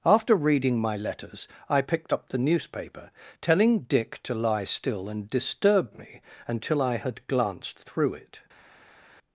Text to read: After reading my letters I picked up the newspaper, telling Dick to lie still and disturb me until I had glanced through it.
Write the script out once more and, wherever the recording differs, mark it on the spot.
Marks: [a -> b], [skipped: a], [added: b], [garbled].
After reading my letters I picked up the newspaper, telling Dick to lie still and disturb me until I had glanced through it.